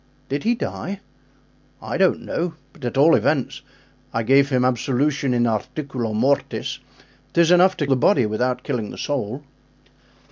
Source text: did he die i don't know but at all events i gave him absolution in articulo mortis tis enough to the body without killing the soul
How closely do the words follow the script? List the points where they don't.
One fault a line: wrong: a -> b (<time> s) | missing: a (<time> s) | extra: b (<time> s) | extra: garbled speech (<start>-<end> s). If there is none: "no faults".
no faults